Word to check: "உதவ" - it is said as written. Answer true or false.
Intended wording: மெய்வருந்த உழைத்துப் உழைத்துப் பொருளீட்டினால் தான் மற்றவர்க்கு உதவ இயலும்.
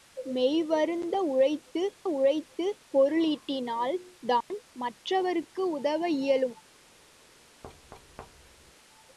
true